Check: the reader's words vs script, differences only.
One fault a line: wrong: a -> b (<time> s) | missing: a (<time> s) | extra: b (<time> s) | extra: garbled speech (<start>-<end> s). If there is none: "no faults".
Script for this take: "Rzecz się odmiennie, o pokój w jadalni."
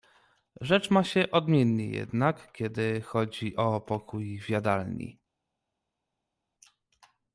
extra: ma (0.9 s)
extra: jednak kiedy chodzi (1.9 s)